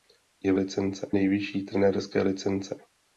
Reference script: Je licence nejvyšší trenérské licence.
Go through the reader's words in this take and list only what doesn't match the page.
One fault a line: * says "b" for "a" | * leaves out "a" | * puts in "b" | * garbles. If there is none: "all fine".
all fine